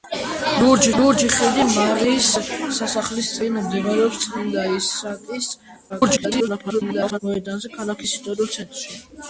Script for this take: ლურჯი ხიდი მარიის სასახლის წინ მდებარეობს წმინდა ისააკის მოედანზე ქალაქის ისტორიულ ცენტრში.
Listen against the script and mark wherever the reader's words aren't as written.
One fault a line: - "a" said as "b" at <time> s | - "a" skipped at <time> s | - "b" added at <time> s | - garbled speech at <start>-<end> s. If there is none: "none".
- "ლურჯი" added at 1.0 s
- garbled speech at 5.9-7.2 s